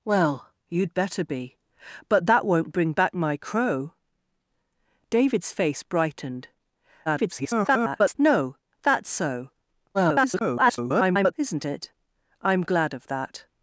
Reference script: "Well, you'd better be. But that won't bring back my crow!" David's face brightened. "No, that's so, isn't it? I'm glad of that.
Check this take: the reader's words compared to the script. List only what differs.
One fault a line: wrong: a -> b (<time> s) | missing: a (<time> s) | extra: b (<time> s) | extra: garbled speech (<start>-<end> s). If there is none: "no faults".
extra: garbled speech (7.1-8.1 s)
extra: garbled speech (9.9-11.3 s)